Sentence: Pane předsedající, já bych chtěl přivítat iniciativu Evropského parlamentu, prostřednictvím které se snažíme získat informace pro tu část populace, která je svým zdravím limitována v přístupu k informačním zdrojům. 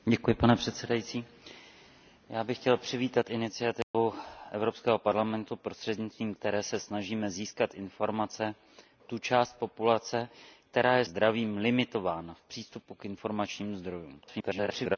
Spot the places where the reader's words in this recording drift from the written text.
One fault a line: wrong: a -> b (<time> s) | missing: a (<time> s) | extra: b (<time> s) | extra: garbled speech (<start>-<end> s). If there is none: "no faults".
missing: pro (8.6 s)
missing: svým (11.0 s)
extra: garbled speech (14.2-15.0 s)